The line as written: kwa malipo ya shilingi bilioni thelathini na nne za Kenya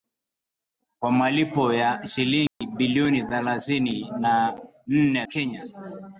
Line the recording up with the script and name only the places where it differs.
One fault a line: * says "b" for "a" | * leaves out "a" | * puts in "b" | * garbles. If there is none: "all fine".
* leaves out "za"